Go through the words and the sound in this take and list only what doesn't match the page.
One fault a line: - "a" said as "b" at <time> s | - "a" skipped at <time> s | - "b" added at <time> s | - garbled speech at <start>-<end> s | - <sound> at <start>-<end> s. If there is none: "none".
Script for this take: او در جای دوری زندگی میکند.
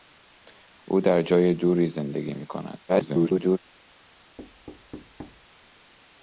- garbled speech at 2.9-3.6 s
- thud at 4.4-5.5 s